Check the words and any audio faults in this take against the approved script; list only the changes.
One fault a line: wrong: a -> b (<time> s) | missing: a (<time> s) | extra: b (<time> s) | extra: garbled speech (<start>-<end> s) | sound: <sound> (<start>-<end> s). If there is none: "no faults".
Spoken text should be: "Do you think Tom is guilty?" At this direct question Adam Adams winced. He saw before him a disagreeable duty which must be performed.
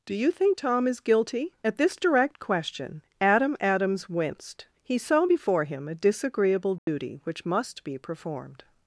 sound: dropout (6.8-6.9 s)